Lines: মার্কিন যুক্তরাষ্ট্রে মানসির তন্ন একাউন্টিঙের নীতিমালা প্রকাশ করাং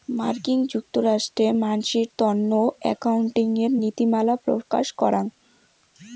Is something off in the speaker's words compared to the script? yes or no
no